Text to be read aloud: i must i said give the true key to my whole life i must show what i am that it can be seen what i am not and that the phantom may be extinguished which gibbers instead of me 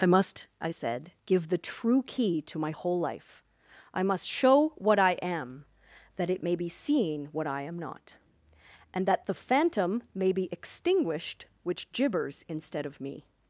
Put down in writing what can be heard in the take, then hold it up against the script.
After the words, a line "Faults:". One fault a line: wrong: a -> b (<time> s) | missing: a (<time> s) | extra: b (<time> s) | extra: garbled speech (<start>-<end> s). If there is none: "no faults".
i must i said give the true key to my whole life i must show what i am that it may be seen what i am not and that the phantom may be extinguished which gibbers instead of me
Faults:
wrong: can -> may (6.4 s)